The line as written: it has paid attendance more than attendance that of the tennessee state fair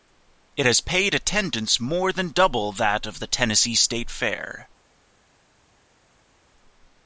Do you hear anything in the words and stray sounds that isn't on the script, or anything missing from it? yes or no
yes